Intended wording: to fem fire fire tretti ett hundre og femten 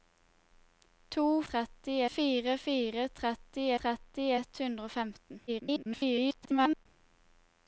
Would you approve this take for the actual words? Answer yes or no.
no